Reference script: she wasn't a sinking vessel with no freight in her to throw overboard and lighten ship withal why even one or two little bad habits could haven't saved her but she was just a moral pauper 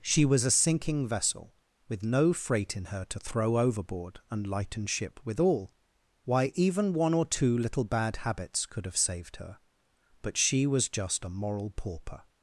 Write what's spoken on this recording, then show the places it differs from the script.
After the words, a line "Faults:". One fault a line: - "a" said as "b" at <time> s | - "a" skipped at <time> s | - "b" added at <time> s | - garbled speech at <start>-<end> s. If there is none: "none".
she was a sinking vessel with no freight in her to throw overboard and lighten ship withal why even one or two little bad habits could have saved her but she was just a moral pauper
Faults:
- "wasn't" said as "was" at 0.2 s
- "haven't" said as "have" at 8.8 s